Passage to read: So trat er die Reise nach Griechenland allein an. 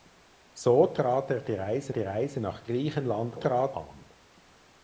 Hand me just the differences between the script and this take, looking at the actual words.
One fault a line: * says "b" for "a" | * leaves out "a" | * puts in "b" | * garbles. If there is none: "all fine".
* puts in "die Reise"
* says "trat" for "allein"